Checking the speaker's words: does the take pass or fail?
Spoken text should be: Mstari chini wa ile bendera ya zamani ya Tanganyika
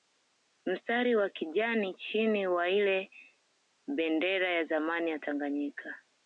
fail